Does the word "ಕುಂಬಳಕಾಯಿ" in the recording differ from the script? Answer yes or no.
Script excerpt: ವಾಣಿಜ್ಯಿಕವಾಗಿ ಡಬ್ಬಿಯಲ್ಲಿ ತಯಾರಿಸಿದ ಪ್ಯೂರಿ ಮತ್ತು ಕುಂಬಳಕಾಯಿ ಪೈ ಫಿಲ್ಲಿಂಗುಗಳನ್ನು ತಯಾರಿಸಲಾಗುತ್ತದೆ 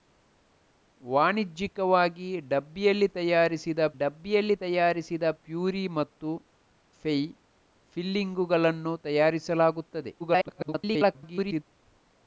yes